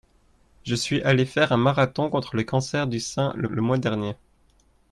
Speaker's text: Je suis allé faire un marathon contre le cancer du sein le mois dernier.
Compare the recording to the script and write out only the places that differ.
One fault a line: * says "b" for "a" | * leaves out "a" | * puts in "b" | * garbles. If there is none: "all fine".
* puts in "le"